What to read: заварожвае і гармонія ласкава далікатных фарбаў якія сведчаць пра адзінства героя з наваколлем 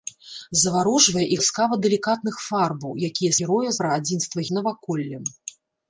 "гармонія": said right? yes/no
no